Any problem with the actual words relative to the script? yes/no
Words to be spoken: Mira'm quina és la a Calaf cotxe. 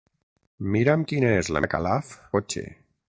no